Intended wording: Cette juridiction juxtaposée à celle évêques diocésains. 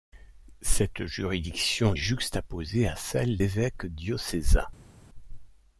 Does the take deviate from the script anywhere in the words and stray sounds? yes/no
no